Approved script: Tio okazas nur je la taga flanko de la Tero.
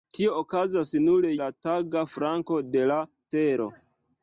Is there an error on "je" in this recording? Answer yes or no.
yes